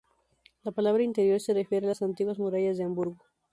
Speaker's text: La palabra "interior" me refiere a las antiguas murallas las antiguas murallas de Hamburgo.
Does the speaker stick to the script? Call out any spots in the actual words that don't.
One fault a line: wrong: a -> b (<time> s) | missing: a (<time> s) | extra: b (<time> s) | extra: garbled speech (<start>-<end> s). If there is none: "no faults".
wrong: me -> se (1.4 s)
missing: las antiguas murallas (2.8 s)